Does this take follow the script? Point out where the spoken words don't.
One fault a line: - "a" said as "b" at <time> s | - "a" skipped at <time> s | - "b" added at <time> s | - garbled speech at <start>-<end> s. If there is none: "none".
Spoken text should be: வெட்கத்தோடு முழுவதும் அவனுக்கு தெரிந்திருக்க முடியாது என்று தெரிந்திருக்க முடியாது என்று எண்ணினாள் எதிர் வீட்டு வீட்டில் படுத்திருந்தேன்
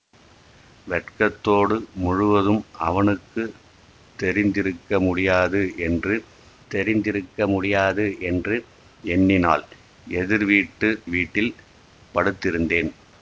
none